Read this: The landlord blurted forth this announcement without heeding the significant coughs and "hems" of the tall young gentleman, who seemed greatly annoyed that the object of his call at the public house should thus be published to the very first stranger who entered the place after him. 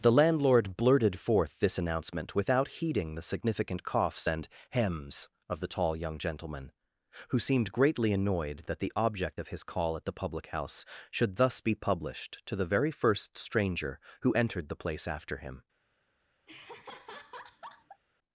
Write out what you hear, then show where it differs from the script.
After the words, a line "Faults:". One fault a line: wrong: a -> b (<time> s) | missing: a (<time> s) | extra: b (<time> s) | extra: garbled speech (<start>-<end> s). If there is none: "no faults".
The landlord blurted forth this announcement without heeding the significant coughs and "hems" of the tall young gentleman, who seemed greatly annoyed that the object of his call at the public house should thus be published to the very first stranger who entered the place after him.
Faults:
no faults